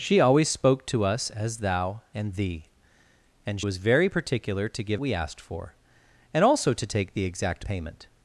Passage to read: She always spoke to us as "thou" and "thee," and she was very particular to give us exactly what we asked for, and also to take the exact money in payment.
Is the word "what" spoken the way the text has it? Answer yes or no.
no